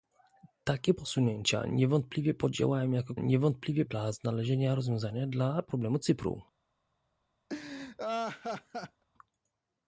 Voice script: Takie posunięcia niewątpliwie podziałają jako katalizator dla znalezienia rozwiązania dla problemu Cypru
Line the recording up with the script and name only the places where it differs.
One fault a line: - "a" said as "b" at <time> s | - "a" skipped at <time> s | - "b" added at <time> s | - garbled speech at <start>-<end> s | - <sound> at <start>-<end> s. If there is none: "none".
- "katalizator" said as "niewątpliwie" at 3.2 s
- laugh at 7.5-9.0 s